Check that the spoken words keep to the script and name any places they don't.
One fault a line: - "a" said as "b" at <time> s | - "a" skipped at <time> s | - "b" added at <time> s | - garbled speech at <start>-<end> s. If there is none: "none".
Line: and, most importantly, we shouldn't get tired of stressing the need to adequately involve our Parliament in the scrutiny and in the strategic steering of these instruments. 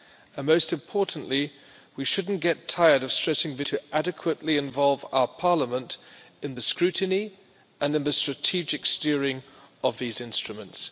- "need" skipped at 3.6 s